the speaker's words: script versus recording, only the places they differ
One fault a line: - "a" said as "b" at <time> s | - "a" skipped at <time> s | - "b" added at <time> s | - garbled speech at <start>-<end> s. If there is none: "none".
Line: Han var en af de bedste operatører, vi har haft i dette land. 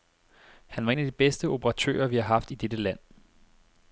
none